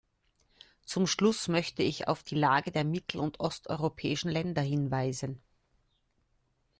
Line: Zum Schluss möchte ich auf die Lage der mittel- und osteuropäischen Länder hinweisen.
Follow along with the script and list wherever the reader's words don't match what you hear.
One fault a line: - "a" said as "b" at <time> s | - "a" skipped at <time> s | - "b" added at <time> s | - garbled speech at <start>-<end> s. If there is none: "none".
none